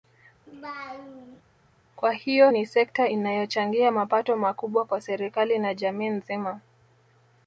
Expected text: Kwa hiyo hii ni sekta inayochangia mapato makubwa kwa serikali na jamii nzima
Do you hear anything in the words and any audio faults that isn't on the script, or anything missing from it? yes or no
yes